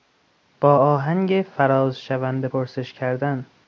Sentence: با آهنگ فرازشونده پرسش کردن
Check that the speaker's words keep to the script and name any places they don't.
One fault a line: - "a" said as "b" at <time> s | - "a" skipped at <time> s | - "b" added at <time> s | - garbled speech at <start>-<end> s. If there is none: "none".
none